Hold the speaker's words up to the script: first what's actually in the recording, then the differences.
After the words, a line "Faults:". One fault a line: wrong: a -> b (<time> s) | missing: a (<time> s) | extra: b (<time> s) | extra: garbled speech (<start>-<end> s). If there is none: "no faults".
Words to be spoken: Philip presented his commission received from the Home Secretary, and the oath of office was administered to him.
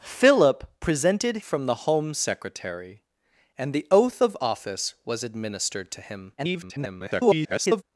Philip presented from the Home Secretary, and the oath of office was administered to him. [garbled]
Faults:
missing: his commission received (1.4 s)
extra: garbled speech (6.4-7.8 s)